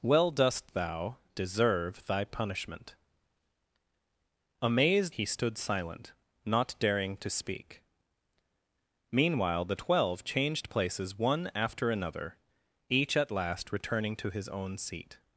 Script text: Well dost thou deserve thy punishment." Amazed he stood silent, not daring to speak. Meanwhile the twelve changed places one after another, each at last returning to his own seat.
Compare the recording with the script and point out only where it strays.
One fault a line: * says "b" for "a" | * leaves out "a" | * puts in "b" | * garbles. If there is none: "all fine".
all fine